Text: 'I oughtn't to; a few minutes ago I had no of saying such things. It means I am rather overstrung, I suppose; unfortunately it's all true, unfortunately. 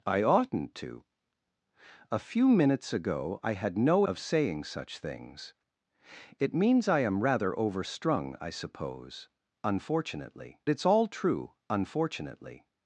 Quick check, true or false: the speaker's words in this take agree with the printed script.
true